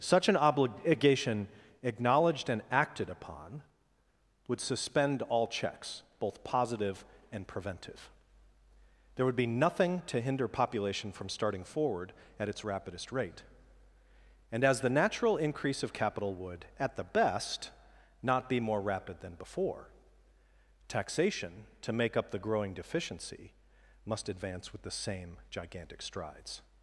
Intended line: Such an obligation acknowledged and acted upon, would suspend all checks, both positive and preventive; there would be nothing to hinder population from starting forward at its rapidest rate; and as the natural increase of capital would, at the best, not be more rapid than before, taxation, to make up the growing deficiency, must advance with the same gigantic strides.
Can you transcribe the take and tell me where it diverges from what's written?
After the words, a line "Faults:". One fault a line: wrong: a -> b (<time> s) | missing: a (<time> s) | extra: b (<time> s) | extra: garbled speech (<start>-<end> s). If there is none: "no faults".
Such an obligation acknowledged and acted upon, would suspend all checks, both positive and preventive; there would be nothing to hinder population from starting forward at its rapidest rate; and as the natural increase of capital would, at the best, not be more rapid than before, taxation, to make up the growing deficiency, must advance with the same gigantic strides.
Faults:
no faults